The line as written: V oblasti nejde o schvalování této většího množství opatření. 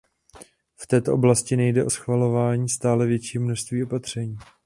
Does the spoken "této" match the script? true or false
false